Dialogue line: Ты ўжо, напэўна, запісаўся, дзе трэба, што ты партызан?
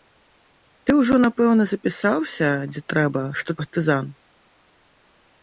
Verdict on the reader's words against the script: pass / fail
fail